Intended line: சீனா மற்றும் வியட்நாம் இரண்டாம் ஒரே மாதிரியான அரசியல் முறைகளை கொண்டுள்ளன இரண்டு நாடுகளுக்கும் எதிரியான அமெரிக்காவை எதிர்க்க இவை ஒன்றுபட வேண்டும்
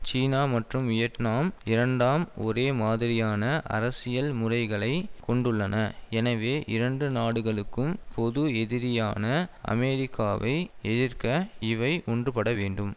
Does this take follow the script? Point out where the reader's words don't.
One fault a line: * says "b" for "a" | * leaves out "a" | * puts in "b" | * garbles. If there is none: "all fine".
* puts in "எனவே"
* puts in "பொது"